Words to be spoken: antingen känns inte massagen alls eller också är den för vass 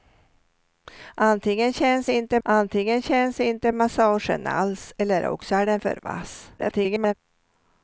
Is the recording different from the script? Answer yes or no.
yes